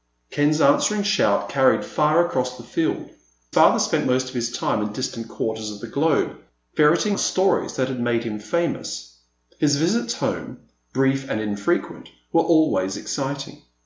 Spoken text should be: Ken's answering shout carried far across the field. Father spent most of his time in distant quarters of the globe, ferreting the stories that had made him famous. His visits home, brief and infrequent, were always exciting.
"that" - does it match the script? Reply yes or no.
yes